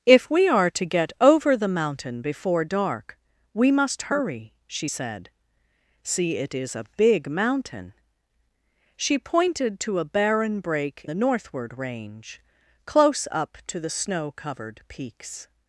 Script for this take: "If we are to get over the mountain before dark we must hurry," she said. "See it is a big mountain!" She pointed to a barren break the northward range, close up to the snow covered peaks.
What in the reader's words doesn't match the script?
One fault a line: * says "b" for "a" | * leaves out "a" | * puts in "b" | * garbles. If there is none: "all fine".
all fine